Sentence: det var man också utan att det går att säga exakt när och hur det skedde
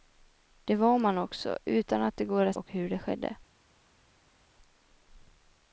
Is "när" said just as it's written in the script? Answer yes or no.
no